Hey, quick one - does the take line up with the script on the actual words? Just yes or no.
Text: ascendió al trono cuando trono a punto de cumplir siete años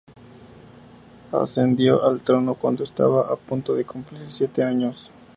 no